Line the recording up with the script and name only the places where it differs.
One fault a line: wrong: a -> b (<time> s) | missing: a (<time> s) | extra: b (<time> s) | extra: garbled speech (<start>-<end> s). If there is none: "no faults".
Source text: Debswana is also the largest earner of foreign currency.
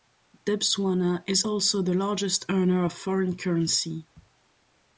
no faults